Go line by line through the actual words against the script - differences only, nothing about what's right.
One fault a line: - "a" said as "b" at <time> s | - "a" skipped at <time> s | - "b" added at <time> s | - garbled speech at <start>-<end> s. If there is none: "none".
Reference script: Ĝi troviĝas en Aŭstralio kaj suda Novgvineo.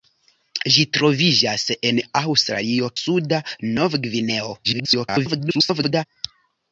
- "kaj" skipped at 2.9 s
- garbled speech at 4.6-6.1 s